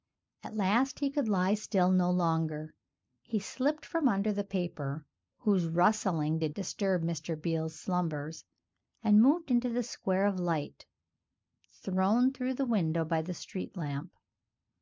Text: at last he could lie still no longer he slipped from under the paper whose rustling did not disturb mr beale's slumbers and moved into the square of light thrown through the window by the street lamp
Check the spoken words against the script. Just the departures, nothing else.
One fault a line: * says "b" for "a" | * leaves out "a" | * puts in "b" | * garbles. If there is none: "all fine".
* leaves out "not"